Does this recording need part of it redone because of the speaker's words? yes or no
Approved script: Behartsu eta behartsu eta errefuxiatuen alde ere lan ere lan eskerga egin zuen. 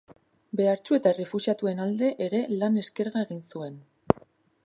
yes